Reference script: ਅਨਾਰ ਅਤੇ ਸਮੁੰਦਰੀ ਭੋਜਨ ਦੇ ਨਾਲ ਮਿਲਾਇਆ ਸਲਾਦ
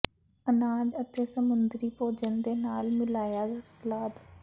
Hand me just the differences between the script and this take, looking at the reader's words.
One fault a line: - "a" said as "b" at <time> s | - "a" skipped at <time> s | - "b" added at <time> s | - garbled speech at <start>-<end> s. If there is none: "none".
none